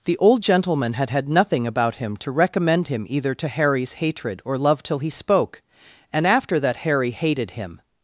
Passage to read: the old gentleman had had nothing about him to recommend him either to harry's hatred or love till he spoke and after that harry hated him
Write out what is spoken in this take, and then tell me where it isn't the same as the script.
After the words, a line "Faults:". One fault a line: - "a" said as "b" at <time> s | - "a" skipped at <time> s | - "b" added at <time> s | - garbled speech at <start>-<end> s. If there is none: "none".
the old gentleman had had nothing about him to recommend him either to harry's hatred or love till he spoke and after that harry hated him
Faults:
none